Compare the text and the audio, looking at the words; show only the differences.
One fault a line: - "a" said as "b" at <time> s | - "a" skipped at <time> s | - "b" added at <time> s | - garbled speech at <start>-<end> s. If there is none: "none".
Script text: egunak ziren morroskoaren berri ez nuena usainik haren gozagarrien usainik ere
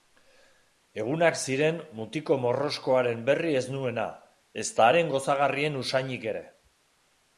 - "mutiko" added at 2.0 s
- "usainik" said as "ezta" at 4.7 s